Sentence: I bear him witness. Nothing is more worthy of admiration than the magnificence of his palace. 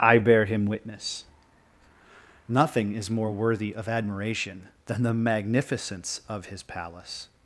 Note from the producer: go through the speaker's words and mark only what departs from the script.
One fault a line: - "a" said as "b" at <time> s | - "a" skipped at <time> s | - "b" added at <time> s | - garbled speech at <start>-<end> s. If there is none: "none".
none